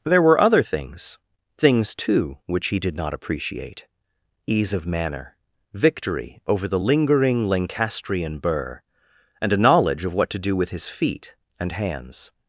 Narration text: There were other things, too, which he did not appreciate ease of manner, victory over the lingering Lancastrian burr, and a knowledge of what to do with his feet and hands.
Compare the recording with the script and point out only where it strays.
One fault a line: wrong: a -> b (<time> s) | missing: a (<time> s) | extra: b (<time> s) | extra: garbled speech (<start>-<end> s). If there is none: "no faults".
extra: things (1.6 s)